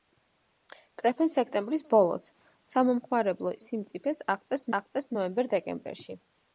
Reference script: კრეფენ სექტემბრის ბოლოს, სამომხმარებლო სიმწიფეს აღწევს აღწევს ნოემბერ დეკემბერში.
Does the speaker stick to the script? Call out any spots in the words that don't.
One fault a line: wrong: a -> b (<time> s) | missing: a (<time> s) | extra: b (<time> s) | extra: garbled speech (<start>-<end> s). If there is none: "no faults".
no faults